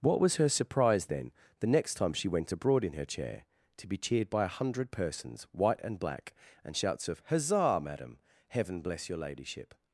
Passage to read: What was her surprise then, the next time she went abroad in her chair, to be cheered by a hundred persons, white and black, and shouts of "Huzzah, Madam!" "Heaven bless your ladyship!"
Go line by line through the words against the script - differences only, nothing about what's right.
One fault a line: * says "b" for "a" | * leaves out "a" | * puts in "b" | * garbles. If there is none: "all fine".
all fine